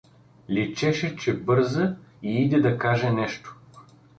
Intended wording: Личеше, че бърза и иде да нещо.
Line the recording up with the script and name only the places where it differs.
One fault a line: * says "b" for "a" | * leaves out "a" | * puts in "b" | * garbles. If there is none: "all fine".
* puts in "каже"